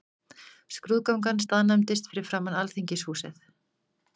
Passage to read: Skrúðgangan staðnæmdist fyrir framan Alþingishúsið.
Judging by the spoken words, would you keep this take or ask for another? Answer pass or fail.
pass